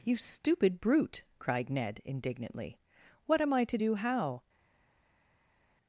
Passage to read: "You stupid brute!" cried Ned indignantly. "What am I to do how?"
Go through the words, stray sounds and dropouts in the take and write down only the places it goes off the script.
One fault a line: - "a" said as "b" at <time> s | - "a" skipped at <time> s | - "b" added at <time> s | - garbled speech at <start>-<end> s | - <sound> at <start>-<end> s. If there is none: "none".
none